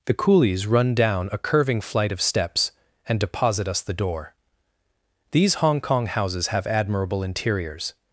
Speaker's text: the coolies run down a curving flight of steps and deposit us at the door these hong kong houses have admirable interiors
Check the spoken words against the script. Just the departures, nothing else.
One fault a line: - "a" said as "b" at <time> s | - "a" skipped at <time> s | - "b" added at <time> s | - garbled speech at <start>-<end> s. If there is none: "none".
- "at" skipped at 3.8 s